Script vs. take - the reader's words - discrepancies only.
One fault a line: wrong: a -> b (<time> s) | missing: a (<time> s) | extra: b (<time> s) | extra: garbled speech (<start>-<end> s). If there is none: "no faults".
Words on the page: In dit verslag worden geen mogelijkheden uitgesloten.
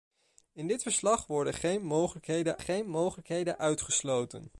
extra: geen mogelijkheden (2.6 s)